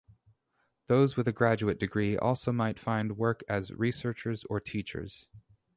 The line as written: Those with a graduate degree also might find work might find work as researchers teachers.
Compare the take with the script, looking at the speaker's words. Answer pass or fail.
fail